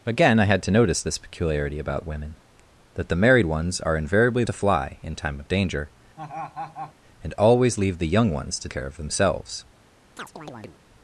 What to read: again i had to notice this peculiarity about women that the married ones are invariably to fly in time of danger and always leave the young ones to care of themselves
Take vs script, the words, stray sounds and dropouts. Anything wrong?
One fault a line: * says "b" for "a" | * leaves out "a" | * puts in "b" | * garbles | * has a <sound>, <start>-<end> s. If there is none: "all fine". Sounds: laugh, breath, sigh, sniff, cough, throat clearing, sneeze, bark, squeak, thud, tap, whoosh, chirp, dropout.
* has a laugh, 6.2-6.9 s
* has a chirp, 10.2-10.8 s